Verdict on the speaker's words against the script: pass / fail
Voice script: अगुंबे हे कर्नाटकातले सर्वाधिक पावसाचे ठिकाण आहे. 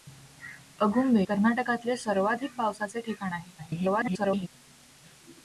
fail